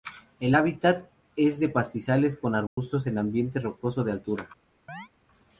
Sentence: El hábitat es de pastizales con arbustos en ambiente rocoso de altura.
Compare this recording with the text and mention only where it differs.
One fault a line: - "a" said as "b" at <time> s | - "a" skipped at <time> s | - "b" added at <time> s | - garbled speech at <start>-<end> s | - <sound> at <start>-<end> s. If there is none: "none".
- dropout at 2.7-2.8 s
- chirp at 4.9-5.1 s